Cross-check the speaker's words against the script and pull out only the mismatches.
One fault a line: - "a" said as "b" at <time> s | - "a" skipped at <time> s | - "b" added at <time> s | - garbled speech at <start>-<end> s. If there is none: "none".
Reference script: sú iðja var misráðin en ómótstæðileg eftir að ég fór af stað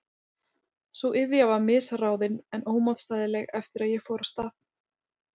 none